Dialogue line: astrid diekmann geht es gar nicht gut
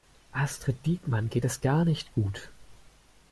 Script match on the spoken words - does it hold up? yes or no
yes